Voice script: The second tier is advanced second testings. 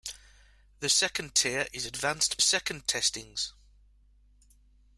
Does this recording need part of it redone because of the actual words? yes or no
no